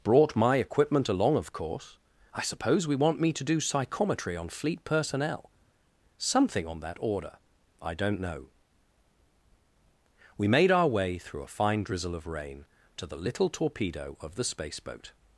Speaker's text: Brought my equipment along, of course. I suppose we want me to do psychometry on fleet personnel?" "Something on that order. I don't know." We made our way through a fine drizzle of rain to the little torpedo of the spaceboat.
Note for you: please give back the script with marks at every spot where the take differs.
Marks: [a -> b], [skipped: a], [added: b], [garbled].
Brought my equipment along, of course. I suppose we want me to do psychometry on fleet personnel?" "Something on that order. I don't know." We made our way through a fine drizzle of rain to the little torpedo of the spaceboat.